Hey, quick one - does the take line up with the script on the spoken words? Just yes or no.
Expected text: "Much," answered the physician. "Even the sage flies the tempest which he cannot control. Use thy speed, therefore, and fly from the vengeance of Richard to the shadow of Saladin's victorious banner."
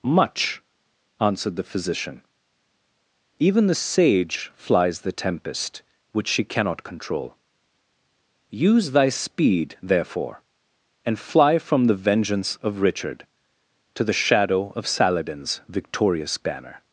no